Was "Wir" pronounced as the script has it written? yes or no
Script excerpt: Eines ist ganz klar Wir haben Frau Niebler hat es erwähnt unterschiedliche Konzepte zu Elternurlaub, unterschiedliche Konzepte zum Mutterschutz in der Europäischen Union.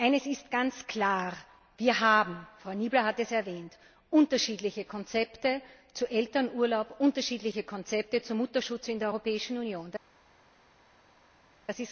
yes